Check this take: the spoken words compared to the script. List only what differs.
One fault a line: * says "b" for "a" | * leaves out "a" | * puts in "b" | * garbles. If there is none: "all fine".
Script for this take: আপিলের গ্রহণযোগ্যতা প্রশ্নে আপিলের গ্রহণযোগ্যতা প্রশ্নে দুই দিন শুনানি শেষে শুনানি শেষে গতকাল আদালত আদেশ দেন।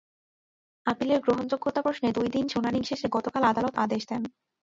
* leaves out "আপিলের গ্রহণযোগ্যতা প্রশ্নে"
* leaves out "শুনানি শেষে"